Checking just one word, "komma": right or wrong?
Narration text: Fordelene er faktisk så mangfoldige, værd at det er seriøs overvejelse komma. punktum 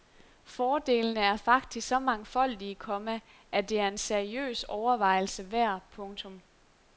wrong